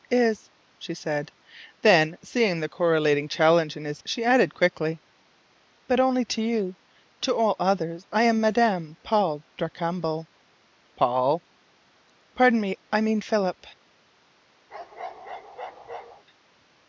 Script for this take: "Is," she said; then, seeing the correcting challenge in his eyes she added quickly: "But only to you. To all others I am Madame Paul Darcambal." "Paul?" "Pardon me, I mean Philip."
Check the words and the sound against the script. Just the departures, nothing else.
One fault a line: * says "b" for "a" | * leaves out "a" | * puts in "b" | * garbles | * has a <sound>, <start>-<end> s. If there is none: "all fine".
* leaves out "eyes"
* has a bark, 14.7-16.2 s